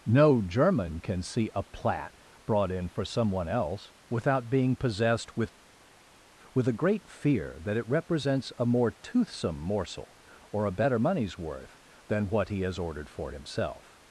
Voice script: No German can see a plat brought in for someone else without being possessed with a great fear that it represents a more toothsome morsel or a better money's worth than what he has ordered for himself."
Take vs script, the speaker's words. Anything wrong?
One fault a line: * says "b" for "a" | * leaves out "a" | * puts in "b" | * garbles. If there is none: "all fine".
* puts in "with"